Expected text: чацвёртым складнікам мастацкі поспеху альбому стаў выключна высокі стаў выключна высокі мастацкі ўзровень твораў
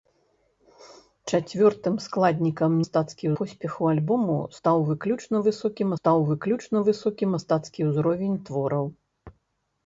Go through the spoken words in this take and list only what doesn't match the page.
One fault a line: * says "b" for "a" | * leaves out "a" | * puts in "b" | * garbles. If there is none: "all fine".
all fine